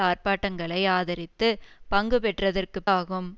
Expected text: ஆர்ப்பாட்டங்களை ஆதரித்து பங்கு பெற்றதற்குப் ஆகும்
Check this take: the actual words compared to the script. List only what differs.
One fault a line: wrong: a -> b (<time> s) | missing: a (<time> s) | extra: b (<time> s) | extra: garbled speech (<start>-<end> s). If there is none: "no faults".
no faults